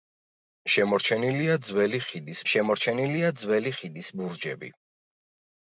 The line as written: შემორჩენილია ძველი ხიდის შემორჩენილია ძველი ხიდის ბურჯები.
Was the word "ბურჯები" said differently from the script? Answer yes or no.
no